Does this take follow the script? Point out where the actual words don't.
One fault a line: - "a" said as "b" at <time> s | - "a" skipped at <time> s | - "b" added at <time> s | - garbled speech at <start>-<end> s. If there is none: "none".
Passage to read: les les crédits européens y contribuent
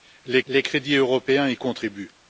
none